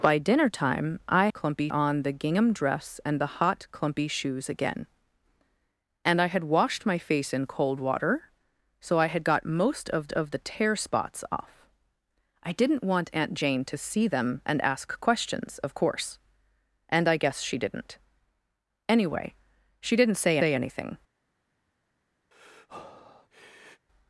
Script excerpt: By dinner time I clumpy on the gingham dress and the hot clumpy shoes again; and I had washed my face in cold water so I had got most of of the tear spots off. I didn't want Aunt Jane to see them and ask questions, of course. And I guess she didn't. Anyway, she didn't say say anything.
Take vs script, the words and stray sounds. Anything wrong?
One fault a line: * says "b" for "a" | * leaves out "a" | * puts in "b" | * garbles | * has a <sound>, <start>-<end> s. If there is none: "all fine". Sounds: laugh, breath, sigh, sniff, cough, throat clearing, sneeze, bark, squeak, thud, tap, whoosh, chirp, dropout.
* has a breath, 22.3-23.9 s